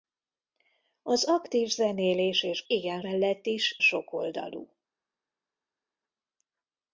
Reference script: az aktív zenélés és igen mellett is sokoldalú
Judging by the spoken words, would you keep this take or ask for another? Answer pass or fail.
pass